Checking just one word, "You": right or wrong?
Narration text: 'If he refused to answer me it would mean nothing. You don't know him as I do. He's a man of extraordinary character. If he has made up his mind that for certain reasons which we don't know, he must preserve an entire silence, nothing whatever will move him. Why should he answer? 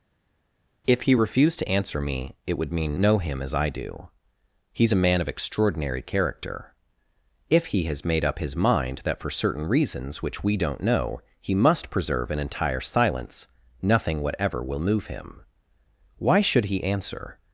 wrong